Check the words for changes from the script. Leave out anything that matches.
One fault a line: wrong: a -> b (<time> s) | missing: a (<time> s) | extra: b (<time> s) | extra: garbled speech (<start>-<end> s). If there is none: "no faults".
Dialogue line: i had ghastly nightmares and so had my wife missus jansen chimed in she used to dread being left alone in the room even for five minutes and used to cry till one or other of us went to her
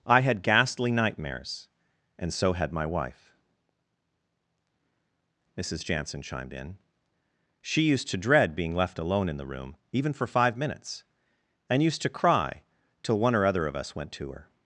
no faults